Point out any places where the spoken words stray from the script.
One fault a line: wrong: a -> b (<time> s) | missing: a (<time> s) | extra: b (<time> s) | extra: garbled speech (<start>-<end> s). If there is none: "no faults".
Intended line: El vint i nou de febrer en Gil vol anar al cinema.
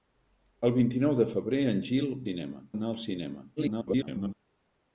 wrong: vol -> cinema (2.2 s)
extra: garbled speech (3.6-4.3 s)